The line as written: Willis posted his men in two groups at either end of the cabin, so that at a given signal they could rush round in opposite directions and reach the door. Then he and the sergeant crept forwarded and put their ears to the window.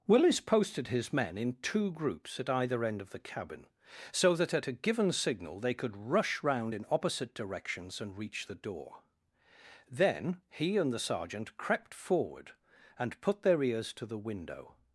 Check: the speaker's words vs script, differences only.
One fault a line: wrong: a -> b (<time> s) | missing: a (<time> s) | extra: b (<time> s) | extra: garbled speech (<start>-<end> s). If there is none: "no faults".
wrong: forwarded -> forward (11.9 s)